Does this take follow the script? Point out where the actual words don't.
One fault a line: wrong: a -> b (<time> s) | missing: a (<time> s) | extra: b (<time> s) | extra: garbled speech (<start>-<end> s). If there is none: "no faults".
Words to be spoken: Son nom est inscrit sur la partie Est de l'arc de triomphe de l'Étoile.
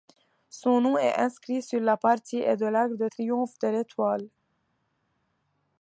no faults